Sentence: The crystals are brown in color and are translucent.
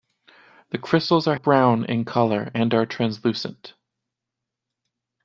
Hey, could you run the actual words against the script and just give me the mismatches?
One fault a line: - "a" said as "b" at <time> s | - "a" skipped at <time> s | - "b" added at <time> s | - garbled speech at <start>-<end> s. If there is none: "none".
none